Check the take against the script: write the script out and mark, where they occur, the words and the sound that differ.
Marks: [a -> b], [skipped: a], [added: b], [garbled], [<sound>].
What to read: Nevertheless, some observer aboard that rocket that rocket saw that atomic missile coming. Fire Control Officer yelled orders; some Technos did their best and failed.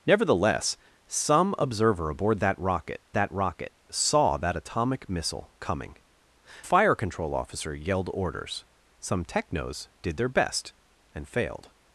Nevertheless, some observer aboard that rocket that rocket saw that atomic missile coming. Fire Control Officer yelled orders; some Technos did their best and failed.